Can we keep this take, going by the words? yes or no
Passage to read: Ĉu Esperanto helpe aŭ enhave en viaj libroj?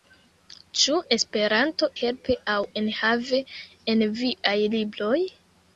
yes